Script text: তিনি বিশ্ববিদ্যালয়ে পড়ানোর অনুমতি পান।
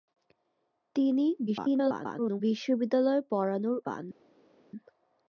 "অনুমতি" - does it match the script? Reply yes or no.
no